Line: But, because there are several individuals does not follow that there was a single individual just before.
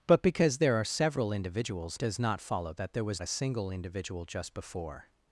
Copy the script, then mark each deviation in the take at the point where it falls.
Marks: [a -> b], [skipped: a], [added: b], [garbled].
But, because there are several individuals does not follow that there was a single individual just before.